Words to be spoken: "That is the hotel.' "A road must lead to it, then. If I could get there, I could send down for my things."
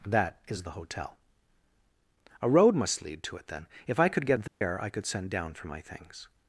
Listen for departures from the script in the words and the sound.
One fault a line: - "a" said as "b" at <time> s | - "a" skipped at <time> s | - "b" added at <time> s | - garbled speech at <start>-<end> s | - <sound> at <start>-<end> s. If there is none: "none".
- dropout at 4.5-4.6 s